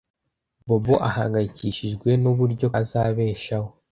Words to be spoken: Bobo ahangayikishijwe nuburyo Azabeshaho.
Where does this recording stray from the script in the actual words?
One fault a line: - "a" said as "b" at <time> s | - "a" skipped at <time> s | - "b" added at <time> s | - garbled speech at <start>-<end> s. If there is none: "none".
none